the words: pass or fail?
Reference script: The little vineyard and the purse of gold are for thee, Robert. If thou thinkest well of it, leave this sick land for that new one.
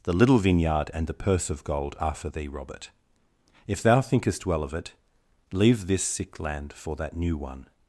pass